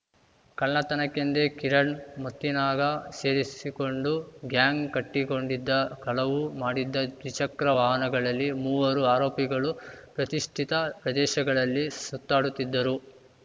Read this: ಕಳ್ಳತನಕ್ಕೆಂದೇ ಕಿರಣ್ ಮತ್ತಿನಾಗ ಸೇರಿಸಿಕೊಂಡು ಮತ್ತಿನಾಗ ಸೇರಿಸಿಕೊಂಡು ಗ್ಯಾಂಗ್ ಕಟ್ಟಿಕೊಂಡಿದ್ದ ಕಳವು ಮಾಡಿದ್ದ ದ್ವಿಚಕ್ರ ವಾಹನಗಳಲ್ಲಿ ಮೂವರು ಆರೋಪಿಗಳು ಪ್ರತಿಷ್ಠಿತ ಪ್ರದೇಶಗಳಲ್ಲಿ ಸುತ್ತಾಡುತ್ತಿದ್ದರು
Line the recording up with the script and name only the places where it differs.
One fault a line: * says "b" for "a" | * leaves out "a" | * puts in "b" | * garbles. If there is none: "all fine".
* leaves out "ಮತ್ತಿನಾಗ ಸೇರಿಸಿಕೊಂಡು"